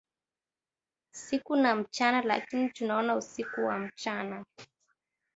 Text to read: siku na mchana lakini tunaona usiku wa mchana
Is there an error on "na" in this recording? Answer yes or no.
no